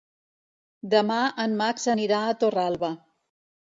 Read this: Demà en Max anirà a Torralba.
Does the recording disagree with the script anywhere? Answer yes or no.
no